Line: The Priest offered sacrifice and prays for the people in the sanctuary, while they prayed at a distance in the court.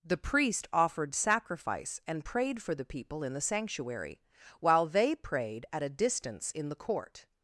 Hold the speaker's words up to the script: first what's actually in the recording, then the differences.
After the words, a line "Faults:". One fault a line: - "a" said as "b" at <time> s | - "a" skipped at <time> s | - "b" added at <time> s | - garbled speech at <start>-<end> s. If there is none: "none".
The Priest offered sacrifice and prayed for the people in the sanctuary, while they prayed at a distance in the court.
Faults:
- "prays" said as "prayed" at 2.2 s